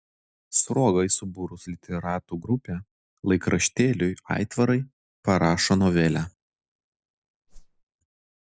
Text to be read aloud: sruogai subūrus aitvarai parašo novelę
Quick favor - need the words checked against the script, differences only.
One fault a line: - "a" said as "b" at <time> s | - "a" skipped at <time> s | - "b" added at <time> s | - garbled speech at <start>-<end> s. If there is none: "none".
- "literatų grupę laikraštėliui" added at 1.7 s